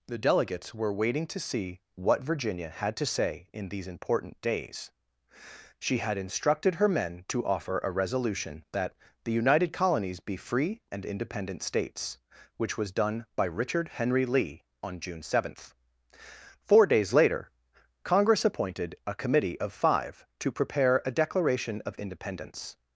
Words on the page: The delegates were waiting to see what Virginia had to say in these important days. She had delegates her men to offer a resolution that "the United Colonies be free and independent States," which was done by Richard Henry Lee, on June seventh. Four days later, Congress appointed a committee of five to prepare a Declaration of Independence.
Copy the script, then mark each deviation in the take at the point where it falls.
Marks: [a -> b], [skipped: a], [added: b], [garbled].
The delegates were waiting to see what Virginia had to say in these important days. She had [delegates -> instructed] her men to offer a resolution that "the United Colonies be free and independent States," which was done by Richard Henry Lee, on June seventh. Four days later, Congress appointed a committee of five to prepare a Declaration of Independence.